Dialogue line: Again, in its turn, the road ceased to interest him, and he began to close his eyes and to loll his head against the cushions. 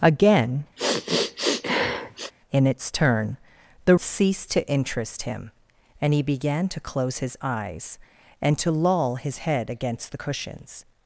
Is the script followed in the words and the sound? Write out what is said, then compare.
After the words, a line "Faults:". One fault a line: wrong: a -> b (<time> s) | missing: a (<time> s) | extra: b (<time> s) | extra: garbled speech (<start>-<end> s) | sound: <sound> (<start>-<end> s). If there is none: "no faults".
Again, in its turn, the ceased to interest him, and he began to close his eyes and to loll his head against the cushions.
Faults:
sound: sniff (0.8-2.3 s)
missing: road (3.9 s)